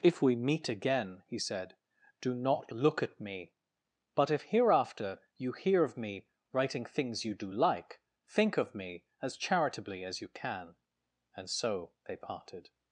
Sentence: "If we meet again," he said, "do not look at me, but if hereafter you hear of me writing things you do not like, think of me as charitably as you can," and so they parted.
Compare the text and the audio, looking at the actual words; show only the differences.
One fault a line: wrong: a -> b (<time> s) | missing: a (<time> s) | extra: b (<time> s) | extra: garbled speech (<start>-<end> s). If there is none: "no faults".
missing: not (7.5 s)